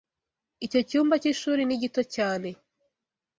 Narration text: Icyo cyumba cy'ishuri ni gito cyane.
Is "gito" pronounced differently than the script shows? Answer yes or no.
no